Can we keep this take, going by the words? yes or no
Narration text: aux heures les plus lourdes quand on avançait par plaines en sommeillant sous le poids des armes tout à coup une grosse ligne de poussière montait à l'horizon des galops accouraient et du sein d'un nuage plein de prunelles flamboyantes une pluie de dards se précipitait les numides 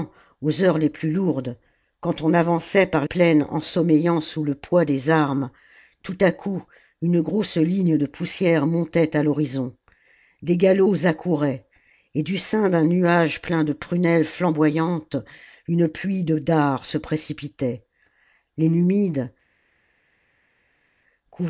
yes